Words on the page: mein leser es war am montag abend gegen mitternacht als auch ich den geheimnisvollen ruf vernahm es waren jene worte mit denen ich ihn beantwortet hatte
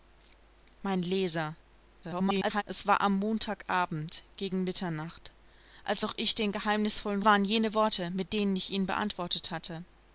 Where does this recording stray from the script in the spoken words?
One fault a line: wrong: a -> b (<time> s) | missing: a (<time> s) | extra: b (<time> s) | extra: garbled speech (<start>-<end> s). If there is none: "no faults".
extra: garbled speech (2.0-2.6 s)
missing: ruf vernahm es (7.2 s)